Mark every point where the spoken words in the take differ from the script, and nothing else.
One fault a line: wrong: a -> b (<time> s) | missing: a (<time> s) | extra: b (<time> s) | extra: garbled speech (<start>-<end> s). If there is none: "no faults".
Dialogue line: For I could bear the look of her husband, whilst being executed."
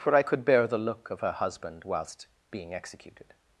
no faults